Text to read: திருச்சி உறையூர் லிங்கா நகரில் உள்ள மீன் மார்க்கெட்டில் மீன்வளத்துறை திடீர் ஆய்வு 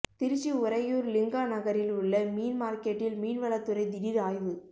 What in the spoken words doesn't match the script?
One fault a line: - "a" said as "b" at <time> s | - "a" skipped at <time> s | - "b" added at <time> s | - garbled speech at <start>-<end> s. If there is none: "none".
none